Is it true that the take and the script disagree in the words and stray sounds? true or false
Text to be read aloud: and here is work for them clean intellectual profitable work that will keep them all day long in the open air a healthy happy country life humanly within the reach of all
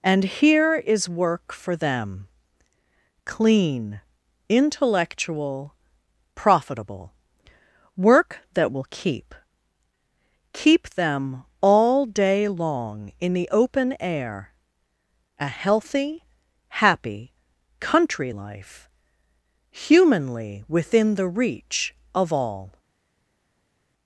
true